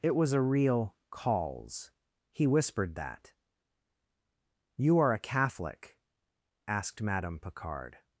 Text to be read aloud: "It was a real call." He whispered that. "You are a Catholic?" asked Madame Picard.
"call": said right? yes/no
no